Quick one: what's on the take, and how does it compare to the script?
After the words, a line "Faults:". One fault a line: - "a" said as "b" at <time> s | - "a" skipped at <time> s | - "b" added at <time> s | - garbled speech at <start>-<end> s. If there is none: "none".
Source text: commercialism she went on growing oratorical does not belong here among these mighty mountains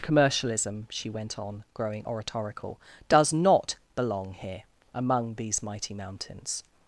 commercialism she went on growing oratorical does not belong here among these mighty mountains
Faults:
none